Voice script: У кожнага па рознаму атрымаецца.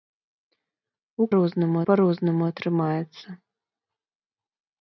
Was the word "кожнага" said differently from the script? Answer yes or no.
yes